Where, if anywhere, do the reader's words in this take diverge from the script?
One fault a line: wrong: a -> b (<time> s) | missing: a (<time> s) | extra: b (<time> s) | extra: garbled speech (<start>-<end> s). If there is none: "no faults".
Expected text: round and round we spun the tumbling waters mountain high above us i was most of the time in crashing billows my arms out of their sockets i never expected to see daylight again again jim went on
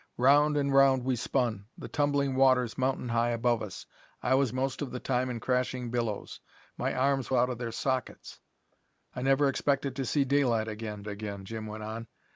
no faults